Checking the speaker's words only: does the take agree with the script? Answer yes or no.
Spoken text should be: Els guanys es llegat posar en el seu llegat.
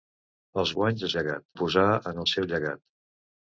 yes